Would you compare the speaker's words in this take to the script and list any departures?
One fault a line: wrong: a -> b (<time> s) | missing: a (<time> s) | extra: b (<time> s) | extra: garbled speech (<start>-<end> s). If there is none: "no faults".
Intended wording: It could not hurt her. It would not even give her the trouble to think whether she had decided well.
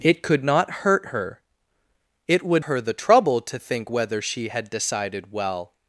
missing: not even give (2.6 s)